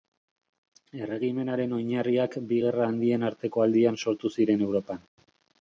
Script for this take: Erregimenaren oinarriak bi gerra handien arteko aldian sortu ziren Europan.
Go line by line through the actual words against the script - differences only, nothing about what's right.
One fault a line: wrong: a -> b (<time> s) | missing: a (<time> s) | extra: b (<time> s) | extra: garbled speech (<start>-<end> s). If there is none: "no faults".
no faults